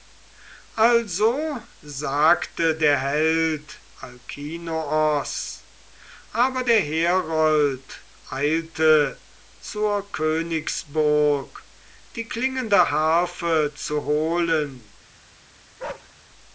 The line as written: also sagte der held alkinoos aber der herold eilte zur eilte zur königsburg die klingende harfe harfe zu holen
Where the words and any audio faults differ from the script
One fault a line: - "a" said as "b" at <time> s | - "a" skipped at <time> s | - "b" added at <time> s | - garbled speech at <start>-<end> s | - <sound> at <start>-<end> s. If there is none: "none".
- "eilte zur" skipped at 10.1 s
- "harfe" skipped at 13.7 s
- bark at 15.8-16.1 s